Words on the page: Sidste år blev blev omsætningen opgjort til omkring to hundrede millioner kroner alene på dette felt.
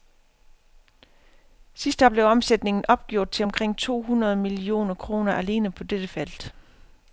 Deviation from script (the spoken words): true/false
true